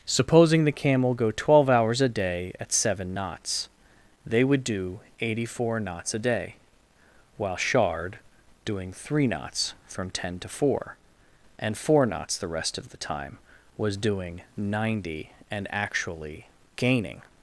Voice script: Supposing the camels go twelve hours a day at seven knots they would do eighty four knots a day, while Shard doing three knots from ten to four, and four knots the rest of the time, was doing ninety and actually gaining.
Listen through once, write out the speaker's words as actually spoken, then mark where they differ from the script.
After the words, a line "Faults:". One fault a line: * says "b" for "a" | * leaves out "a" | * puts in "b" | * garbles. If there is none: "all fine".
Supposing the camel go twelve hours a day at seven knots they would do eighty four knots a day, while Shard doing three knots from ten to four, and four knots the rest of the time, was doing ninety and actually gaining.
Faults:
* says "camel" for "camels"